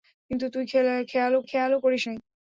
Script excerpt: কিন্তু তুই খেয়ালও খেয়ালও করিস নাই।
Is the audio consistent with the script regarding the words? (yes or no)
yes